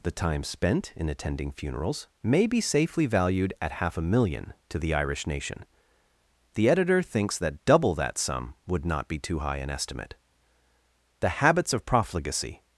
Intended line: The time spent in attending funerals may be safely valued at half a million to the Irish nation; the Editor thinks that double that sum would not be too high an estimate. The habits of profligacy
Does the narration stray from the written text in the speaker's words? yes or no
no